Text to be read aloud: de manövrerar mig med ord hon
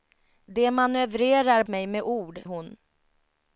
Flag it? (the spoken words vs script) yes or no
no